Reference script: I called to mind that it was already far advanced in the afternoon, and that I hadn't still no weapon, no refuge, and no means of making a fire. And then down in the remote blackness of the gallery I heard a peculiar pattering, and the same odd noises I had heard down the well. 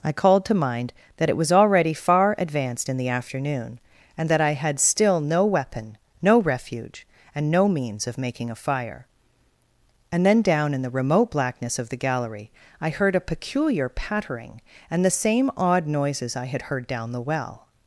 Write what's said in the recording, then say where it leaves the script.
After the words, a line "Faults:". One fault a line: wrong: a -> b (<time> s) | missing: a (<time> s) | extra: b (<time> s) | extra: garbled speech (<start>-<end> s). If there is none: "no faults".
I called to mind that it was already far advanced in the afternoon, and that I had still no weapon, no refuge, and no means of making a fire. And then down in the remote blackness of the gallery I heard a peculiar pattering, and the same odd noises I had heard down the well.
Faults:
wrong: hadn't -> had (4.5 s)